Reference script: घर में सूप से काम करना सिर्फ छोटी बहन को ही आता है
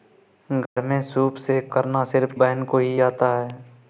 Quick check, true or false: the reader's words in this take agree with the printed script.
false